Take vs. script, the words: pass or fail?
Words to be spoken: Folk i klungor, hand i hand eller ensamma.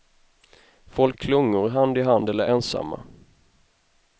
pass